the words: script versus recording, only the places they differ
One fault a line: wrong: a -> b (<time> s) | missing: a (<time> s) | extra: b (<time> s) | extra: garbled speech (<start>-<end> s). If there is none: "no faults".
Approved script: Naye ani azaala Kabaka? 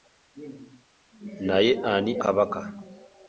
missing: azaala (2.1 s)